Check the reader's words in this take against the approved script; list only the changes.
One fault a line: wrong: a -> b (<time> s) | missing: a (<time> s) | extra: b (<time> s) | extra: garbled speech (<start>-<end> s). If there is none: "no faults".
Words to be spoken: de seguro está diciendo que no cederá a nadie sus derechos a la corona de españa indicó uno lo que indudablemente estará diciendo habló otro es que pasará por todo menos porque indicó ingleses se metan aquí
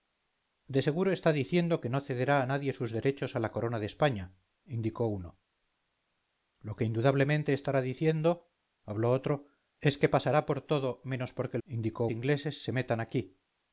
no faults